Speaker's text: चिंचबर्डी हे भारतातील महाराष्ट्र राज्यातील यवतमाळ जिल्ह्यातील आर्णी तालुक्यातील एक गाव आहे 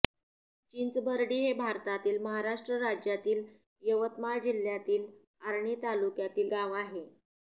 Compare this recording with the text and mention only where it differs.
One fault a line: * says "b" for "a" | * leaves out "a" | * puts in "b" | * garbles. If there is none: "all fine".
* leaves out "एक"